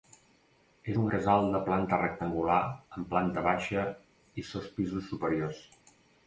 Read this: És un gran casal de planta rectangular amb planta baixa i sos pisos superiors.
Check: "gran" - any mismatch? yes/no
yes